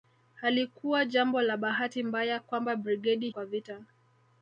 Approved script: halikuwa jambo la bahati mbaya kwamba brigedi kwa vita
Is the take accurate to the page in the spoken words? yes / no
yes